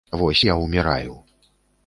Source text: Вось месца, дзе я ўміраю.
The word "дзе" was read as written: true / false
false